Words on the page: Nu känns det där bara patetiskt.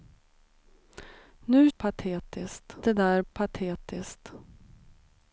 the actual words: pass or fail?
fail